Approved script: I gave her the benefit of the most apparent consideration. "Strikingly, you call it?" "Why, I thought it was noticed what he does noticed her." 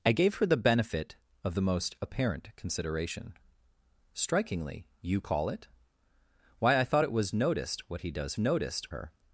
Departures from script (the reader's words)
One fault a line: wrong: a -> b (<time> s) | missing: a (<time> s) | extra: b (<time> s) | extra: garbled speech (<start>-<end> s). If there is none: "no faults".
no faults